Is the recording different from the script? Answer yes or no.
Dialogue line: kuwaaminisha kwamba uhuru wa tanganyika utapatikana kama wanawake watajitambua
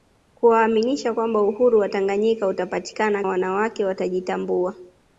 yes